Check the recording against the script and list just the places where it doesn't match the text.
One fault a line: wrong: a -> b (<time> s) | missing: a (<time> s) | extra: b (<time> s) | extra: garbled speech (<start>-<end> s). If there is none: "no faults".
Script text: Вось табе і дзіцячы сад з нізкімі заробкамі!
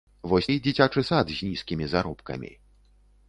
missing: табе (0.5 s)